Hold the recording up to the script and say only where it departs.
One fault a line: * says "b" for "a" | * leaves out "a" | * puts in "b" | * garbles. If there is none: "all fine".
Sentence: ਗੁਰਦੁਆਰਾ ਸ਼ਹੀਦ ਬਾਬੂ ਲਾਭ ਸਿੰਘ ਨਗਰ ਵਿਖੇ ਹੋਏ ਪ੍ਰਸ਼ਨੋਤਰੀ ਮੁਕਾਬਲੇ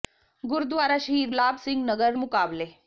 * leaves out "ਬਾਬੂ"
* leaves out "ਵਿਖੇ ਹੋਏ ਪ੍ਰਸ਼ਨੋਤਰੀ"